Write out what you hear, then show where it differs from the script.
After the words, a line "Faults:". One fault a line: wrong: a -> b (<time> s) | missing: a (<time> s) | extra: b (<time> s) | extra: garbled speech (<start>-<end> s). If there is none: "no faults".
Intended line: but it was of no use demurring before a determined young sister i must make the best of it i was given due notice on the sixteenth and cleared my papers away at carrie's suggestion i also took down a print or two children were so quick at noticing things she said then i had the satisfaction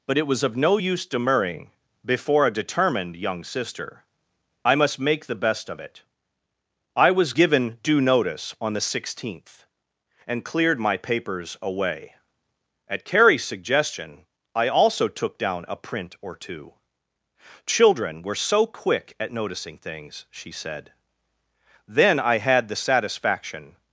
but it was of no use demurring before a determined young sister i must make the best of it i was given due notice on the sixteenth and cleared my papers away at carrie's suggestion i also took down a print or two children were so quick at noticing things she said then i had the satisfaction
Faults:
no faults